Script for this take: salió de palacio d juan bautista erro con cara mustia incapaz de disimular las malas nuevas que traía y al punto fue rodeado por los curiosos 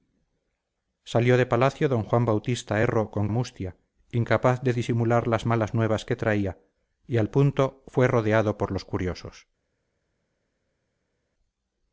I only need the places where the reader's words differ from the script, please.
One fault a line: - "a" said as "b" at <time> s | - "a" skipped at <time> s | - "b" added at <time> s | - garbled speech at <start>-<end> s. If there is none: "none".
- "cara" skipped at 3.3 s